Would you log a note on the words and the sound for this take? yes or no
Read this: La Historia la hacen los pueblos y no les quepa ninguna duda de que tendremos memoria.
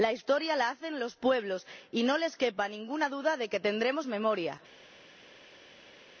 no